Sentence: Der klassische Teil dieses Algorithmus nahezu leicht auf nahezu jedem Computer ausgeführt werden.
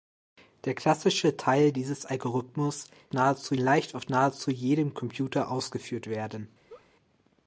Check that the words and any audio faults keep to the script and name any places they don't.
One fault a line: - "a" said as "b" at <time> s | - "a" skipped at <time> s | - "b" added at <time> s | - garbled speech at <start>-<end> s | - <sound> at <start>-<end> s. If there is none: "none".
- laugh at 6.7-6.9 s